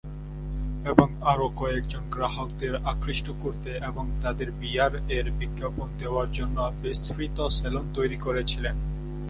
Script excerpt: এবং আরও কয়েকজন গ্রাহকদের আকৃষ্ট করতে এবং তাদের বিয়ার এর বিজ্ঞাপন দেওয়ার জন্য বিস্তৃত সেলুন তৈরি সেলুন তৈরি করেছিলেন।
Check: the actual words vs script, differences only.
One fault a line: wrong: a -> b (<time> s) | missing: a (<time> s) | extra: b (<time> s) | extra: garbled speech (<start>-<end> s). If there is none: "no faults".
missing: সেলুন তৈরি (8.2 s)